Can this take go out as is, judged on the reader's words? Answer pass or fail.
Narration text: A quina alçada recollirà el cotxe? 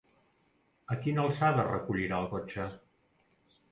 pass